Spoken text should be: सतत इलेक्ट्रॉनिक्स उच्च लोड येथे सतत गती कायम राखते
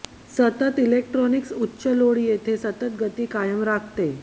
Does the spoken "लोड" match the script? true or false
true